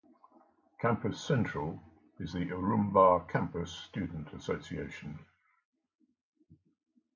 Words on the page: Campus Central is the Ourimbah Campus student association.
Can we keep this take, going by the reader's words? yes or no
yes